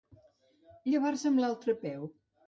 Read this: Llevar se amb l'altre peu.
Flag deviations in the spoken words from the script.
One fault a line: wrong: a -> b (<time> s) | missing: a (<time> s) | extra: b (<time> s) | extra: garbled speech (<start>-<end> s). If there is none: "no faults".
no faults